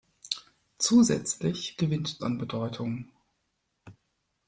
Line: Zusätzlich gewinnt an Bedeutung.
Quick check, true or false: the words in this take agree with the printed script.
true